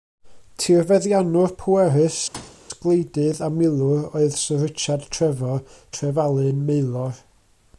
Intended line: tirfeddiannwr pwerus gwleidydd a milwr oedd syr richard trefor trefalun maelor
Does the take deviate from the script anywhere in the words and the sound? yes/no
yes